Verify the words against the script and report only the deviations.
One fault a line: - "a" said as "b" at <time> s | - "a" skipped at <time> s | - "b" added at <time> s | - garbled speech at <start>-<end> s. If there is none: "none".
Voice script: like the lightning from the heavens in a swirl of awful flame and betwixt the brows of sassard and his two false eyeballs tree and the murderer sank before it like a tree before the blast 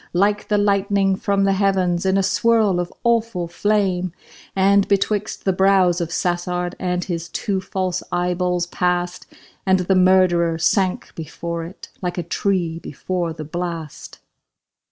- "tree" said as "passed" at 8.7 s